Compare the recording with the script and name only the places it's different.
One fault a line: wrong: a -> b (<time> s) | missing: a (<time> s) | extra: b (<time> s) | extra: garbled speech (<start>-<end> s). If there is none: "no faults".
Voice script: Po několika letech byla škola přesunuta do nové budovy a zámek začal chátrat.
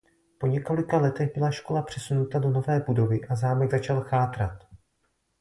no faults